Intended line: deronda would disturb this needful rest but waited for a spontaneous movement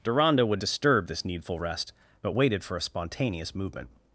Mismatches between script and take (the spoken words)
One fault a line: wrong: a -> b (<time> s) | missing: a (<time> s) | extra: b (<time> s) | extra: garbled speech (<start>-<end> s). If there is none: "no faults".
no faults